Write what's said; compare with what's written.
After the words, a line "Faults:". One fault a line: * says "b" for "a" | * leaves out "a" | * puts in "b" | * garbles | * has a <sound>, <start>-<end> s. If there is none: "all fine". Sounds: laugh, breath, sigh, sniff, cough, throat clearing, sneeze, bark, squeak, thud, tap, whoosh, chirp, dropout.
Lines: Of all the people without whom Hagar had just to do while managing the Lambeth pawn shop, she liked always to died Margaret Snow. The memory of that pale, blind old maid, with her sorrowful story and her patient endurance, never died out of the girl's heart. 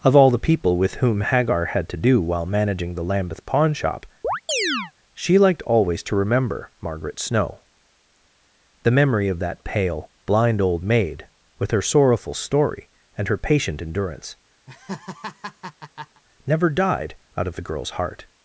Of all the people with whom Hagar had to do while managing the Lambeth pawn shop, she liked always to remember Margaret Snow. The memory of that pale, blind old maid, with her sorrowful story and her patient endurance, never died out of the girl's heart.
Faults:
* says "with" for "without"
* leaves out "just"
* has a chirp, 4.2-4.9 s
* says "remember" for "died"
* has a laugh, 14.7-16.2 s